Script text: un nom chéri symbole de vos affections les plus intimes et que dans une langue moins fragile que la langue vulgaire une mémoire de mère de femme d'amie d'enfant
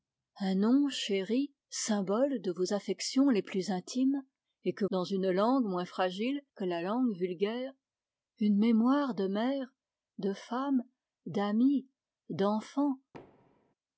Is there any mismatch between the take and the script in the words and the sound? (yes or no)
yes